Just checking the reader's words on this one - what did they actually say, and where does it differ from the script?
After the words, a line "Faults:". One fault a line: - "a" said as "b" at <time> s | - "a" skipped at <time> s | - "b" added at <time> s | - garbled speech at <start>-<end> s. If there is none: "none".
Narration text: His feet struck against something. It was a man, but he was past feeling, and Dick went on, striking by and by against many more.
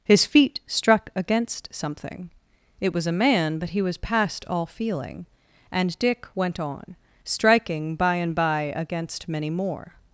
His feet struck against something. It was a man, but he was past all feeling, and Dick went on, striking by and by against many more.
Faults:
- "all" added at 4.5 s